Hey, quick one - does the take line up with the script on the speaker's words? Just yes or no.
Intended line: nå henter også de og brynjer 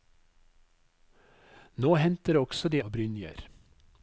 yes